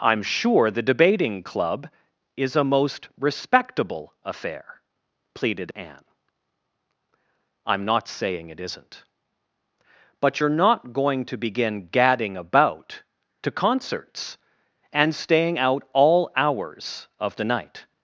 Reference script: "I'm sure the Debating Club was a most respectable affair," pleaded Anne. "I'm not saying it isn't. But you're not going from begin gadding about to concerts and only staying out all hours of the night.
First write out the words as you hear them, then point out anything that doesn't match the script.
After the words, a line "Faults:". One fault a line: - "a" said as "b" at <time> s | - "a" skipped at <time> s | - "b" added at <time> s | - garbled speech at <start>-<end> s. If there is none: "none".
"I'm sure the Debating Club is a most respectable affair," pleaded Anne. "I'm not saying it isn't. But you're not going to begin gadding about to concerts and staying out all hours of the night.
Faults:
- "was" said as "is" at 2.4 s
- "from" said as "to" at 11.3 s
- "only" skipped at 15.1 s